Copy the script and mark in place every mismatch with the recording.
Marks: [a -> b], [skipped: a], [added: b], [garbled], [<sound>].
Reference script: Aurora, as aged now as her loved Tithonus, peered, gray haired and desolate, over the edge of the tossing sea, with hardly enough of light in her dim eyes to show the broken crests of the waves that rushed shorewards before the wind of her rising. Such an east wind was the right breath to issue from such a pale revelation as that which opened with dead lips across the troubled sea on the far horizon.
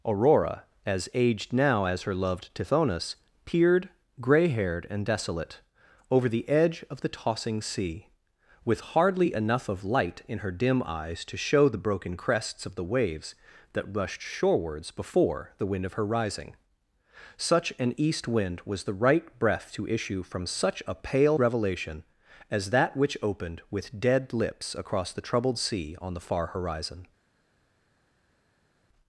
Aurora, as aged now as her loved Tithonus, peered, gray haired and desolate, over the edge of the tossing sea, with hardly enough of light in her dim eyes to show the broken crests of the waves that rushed shorewards before the wind of her rising. Such an east wind was the right breath to issue from such a pale revelation as that which opened with dead lips across the troubled sea on the far horizon.